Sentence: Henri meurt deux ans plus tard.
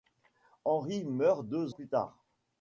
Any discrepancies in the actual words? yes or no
yes